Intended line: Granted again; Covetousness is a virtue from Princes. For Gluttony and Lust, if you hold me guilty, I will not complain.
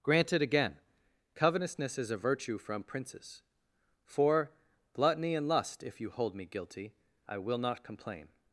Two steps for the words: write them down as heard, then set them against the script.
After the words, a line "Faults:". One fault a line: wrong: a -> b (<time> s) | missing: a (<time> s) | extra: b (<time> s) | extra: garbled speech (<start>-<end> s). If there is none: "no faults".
Granted again; Covetousness is a virtue from Princes. For Gluttony and Lust, if you hold me guilty, I will not complain.
Faults:
no faults